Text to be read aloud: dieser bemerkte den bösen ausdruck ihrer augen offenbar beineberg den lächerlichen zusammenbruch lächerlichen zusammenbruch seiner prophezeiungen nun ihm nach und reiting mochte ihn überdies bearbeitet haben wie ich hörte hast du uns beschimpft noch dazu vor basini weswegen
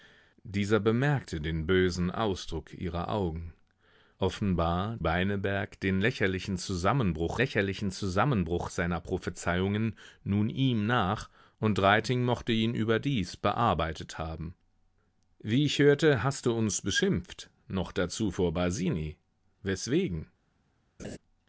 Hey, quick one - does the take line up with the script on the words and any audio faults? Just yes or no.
no